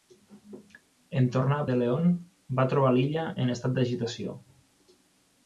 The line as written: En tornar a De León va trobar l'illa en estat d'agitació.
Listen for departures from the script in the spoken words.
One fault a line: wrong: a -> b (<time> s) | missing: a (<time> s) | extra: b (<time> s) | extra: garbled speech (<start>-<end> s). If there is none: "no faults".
no faults